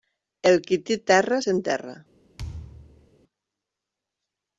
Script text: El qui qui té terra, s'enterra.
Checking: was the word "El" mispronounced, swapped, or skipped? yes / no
no